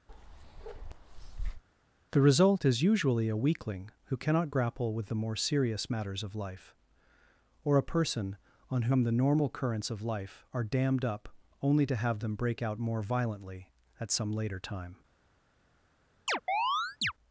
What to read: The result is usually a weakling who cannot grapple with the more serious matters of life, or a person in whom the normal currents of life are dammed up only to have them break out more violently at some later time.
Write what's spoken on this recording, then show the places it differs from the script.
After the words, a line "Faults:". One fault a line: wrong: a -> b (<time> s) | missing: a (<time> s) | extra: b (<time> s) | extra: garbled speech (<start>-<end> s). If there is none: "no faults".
The result is usually a weakling who cannot grapple with the more serious matters of life, or a person on whom the normal currents of life are dammed up only to have them break out more violently at some later time.
Faults:
wrong: in -> on (8.7 s)